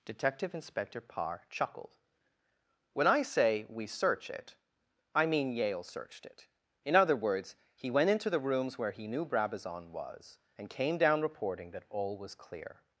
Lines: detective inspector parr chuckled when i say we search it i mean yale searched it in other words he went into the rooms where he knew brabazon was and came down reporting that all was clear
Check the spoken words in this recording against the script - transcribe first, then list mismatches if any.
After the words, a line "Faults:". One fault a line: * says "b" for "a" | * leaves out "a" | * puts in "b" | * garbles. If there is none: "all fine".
detective inspector parr chuckled when i say we search it i mean yale searched it in other words he went into the rooms where he knew brabazon was and came down reporting that all was clear
Faults:
all fine